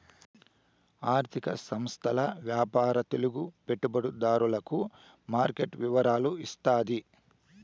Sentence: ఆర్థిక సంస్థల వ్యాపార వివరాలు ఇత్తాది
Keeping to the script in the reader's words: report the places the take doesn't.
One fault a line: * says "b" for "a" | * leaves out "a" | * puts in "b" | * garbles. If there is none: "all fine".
* puts in "తెలుగు పెట్టుబడిదారులకు మార్కెట్"